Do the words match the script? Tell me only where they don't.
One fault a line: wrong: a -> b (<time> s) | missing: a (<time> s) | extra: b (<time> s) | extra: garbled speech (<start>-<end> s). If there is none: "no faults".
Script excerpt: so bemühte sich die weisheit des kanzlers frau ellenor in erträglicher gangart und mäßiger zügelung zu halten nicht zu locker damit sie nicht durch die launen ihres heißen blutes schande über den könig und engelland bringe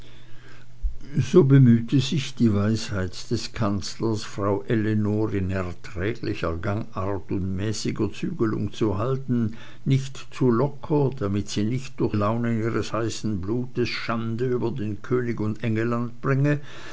missing: die (12.2 s)